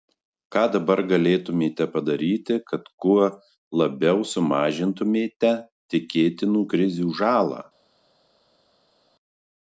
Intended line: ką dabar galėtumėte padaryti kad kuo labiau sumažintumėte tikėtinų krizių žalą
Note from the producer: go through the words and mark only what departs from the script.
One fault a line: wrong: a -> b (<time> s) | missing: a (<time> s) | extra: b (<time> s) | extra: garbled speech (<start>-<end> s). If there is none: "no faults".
no faults